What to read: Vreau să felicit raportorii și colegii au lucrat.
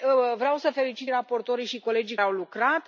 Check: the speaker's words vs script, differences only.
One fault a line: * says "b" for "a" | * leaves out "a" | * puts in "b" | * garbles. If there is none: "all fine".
all fine